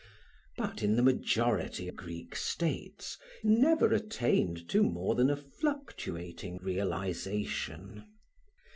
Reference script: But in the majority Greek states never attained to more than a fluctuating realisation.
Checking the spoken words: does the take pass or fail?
pass